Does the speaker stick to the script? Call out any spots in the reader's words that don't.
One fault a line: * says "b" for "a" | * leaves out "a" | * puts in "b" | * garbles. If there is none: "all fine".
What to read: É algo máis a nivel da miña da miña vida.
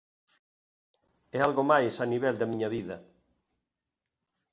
* leaves out "da miña"